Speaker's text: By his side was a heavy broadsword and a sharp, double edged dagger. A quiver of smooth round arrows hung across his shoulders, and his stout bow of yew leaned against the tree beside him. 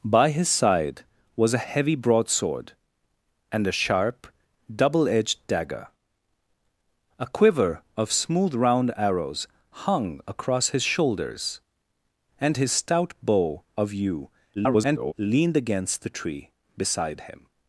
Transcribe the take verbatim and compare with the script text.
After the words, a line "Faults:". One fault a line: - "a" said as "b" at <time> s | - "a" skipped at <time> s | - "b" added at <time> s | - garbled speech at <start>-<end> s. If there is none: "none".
By his side was a heavy broadsword and a sharp, double edged dagger. A quiver of smooth round arrows hung across his shoulders, and his stout bow of yew [garbled] leaned against the tree beside him.
Faults:
- garbled speech at 14.5-15.1 s